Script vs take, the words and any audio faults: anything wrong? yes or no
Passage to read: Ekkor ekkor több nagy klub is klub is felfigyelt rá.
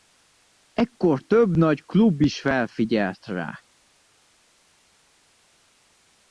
yes